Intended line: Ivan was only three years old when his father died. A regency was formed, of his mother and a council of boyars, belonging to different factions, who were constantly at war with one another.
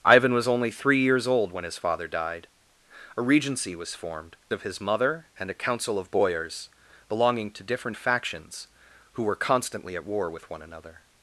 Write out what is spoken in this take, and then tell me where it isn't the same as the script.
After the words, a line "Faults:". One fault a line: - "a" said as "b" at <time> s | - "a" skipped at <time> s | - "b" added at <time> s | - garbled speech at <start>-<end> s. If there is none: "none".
Ivan was only three years old when his father died. A regency was formed, of his mother and a council of boyars, belonging to different factions, who were constantly at war with one another.
Faults:
none